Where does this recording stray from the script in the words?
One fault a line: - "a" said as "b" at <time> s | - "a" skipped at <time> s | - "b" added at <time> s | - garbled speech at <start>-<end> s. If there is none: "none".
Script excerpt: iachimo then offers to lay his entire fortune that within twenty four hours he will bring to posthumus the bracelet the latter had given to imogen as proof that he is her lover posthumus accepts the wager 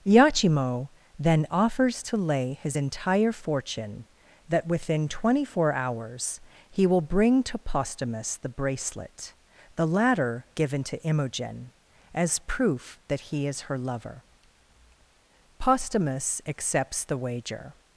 - "had" skipped at 10.5 s